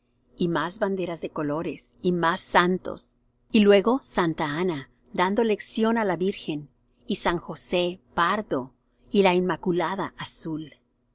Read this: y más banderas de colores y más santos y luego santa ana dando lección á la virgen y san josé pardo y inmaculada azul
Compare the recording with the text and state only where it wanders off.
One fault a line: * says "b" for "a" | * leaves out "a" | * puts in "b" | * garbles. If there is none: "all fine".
* puts in "la"